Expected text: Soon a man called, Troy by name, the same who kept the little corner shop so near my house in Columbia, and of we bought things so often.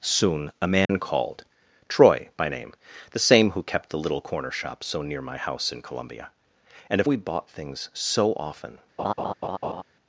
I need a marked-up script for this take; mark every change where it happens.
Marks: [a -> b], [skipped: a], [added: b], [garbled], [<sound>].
Soon a man [dropout] called, Troy by name, the same who kept the little corner shop so near my house in Columbia, and of we bought things so often. [laugh]